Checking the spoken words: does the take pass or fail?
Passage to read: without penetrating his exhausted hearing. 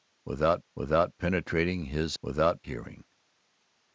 fail